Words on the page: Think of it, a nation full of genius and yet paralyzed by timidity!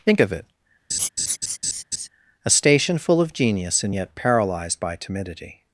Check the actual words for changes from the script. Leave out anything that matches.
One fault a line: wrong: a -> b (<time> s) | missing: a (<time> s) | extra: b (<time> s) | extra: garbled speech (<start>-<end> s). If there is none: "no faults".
wrong: nation -> station (2.5 s)